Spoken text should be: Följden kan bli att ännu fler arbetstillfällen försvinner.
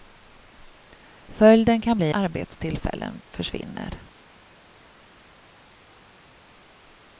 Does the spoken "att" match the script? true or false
false